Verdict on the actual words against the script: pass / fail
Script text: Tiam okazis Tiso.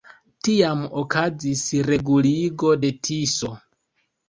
fail